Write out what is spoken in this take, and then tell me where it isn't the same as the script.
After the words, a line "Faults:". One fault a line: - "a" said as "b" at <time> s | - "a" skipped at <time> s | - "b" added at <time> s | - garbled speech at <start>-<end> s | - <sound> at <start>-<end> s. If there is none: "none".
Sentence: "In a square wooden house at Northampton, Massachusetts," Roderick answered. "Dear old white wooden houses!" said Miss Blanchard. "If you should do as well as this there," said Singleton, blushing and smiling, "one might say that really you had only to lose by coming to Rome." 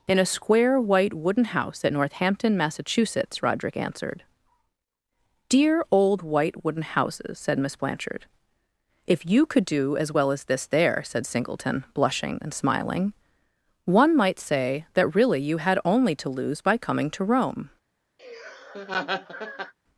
"In a square white wooden house at Northampton, Massachusetts," Roderick answered. "Dear old white wooden houses!" said Miss Blanchard. "If you could do as well as this there," said Singleton, blushing and smiling, "one might say that really you had only to lose by coming to Rome."
Faults:
- "white" added at 0.8 s
- "should" said as "could" at 9.4 s
- laugh at 18.2-19.7 s